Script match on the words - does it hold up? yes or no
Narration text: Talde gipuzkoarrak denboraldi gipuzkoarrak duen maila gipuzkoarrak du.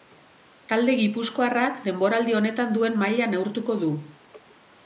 no